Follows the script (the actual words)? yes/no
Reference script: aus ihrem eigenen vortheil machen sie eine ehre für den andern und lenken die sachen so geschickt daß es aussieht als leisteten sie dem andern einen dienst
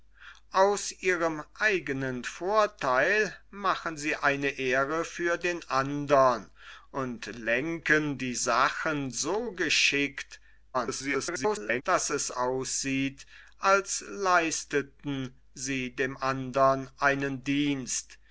no